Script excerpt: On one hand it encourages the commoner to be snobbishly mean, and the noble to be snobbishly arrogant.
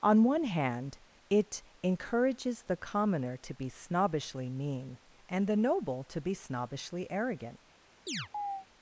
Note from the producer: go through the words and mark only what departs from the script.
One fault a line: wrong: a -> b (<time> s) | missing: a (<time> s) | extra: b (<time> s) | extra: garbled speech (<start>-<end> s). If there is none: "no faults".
no faults